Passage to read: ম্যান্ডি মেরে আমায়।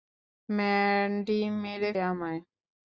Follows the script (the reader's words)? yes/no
yes